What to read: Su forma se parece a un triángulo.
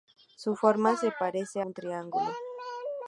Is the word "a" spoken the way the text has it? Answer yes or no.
no